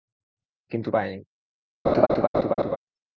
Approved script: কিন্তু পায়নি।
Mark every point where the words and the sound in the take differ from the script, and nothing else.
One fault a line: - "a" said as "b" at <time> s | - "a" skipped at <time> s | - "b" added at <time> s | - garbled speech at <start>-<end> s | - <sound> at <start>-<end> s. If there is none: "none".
- laugh at 1.8-2.8 s